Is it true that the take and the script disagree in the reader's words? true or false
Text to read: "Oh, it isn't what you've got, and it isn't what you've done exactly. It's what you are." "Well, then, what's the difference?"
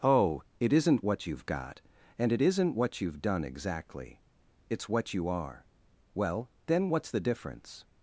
false